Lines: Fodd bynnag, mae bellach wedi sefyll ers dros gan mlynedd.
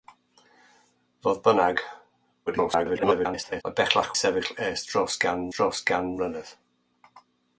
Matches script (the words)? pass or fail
fail